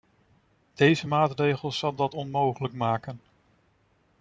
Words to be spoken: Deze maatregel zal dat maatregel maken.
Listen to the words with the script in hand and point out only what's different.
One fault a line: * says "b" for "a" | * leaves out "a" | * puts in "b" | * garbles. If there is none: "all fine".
* says "onmogelijk" for "maatregel"